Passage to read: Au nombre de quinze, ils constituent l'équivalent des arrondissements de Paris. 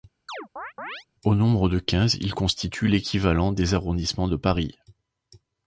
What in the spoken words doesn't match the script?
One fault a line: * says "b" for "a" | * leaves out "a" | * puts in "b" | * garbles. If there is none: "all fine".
all fine